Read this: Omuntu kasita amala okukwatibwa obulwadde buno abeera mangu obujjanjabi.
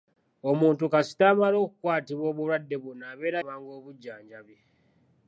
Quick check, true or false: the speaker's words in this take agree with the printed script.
true